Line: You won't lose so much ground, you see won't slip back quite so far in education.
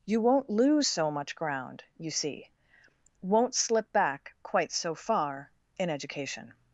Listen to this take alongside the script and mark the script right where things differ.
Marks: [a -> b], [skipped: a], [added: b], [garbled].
You won't lose so much ground, you see won't slip back quite so far in education.